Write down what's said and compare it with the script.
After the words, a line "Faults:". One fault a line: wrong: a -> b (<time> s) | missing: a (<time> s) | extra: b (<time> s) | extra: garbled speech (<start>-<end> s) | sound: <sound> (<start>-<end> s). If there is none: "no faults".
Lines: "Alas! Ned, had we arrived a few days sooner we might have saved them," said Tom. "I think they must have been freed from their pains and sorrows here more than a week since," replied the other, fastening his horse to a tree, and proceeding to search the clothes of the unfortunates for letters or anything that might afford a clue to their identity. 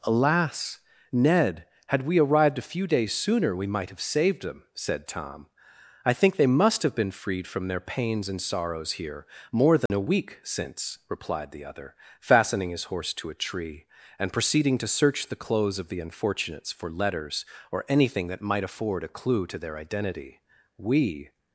"Alas! Ned, had we arrived a few days sooner we might have saved them," said Tom. "I think they must have been freed from their pains and sorrows here more than a week since," replied the other, fastening his horse to a tree, and proceeding to search the clothes of the unfortunates for letters or anything that might afford a clue to their identity. "We
Faults:
sound: dropout (9.9-9.9 s)
extra: We (20.8 s)